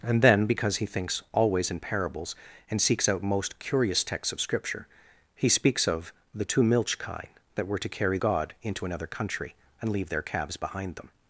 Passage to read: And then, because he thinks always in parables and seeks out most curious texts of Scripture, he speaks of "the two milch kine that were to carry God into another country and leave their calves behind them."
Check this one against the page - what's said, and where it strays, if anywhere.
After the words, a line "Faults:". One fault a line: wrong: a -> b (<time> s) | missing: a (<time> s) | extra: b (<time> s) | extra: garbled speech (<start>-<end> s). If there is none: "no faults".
And then, because he thinks always in parables and seeks out most curious texts of Scripture, he speaks of "the two milch kine that were to carry God into another country and leave their calves behind them."
Faults:
no faults